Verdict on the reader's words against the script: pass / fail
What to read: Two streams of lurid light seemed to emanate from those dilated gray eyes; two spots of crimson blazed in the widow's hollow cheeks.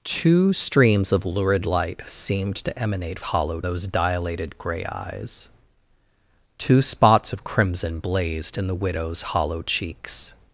fail